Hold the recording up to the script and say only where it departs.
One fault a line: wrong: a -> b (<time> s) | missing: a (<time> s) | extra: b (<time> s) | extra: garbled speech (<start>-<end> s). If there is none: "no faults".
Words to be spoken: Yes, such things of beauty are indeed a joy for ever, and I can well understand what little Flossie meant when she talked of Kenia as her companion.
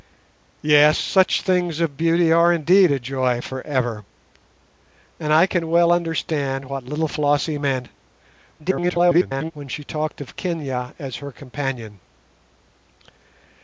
extra: garbled speech (8.6-9.5 s)